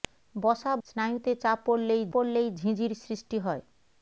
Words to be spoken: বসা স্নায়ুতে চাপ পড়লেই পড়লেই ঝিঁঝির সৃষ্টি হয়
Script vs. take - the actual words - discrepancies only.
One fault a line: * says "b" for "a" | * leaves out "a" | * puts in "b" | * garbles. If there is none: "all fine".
all fine